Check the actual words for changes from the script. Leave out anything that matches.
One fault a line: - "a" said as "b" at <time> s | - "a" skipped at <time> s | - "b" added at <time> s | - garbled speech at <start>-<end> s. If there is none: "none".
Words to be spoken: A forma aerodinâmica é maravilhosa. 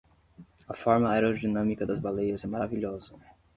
- "das baleias" added at 1.8 s